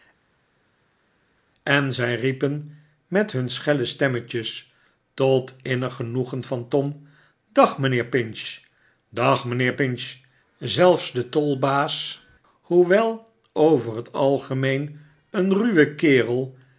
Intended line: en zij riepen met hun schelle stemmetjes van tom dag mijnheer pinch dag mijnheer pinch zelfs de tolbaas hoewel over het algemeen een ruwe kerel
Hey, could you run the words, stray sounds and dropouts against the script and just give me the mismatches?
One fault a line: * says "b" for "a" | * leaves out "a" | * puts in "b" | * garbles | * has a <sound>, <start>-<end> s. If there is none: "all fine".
* puts in "tot innig genoegen"